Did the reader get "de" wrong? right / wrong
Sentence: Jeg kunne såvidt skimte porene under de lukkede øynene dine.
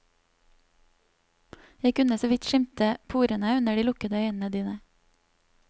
right